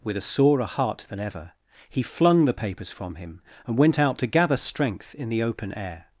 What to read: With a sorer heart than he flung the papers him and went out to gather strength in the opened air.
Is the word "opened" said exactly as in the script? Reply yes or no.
no